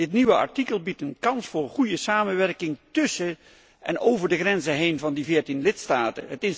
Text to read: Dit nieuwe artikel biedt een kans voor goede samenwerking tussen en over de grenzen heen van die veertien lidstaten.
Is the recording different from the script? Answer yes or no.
no